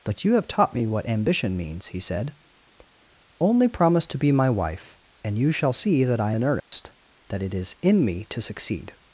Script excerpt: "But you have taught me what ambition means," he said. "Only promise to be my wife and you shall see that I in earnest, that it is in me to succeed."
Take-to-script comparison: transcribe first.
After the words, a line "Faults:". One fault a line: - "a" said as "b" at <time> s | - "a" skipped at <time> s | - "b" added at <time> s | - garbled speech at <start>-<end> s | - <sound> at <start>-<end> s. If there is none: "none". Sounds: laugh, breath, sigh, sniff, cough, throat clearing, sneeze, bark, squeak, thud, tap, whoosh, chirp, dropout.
"But you have taught me what ambition means," he said. "Only promise to be my wife and you shall see that I in earnest, that it is in me to succeed."
Faults:
- dropout at 6.6-6.7 s